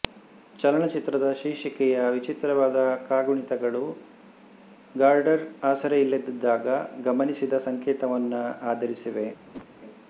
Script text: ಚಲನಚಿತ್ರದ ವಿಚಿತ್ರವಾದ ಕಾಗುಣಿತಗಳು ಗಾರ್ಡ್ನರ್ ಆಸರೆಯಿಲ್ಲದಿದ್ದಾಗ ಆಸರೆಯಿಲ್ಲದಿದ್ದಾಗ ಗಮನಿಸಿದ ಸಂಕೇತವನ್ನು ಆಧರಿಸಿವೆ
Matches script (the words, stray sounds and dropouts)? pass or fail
fail